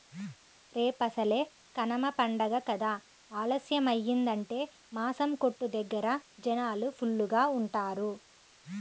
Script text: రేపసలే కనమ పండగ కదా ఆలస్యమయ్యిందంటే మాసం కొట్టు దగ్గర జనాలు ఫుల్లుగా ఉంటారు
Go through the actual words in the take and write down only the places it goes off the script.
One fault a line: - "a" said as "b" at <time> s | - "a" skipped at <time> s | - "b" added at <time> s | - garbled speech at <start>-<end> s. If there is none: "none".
none